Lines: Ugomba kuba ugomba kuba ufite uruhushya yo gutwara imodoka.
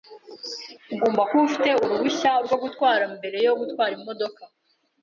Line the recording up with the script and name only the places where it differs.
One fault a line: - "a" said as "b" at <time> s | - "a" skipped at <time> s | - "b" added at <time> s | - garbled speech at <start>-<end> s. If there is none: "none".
- "ugomba kuba ufite uruhushya" said as "ufite uruhushya rwo gutwara mbere" at 1.5 s